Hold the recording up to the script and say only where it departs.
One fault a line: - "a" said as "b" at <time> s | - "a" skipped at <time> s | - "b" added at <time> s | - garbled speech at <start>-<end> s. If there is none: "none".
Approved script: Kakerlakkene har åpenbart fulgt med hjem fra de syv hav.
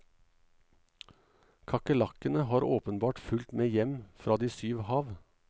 none